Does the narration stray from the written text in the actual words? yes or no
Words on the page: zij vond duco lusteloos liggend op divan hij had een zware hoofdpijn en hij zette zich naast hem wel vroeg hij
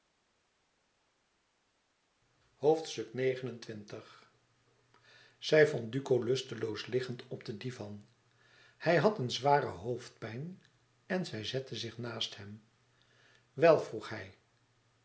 yes